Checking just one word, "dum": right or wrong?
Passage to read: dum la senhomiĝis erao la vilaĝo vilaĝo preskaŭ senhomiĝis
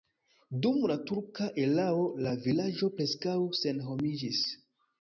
right